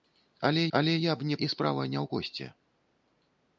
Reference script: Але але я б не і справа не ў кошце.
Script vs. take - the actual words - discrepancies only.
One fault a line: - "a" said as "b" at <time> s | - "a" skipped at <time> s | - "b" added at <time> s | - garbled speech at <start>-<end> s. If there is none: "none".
none